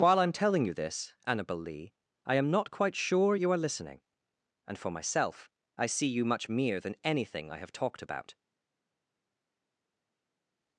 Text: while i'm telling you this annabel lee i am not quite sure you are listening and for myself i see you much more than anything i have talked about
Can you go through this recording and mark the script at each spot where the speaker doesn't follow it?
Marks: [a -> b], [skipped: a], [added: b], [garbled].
while i'm telling you this annabel lee i am not quite sure you are listening and for myself i see you much [more -> mere] than anything i have talked about